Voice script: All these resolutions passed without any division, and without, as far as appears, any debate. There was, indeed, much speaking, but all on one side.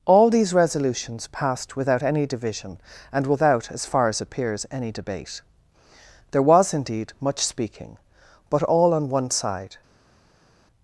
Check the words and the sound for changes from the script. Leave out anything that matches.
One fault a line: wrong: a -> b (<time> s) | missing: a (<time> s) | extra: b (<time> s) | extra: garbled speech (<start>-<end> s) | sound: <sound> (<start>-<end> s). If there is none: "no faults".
no faults